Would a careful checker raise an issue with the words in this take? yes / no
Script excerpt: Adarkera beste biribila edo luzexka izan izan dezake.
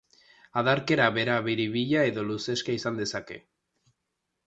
yes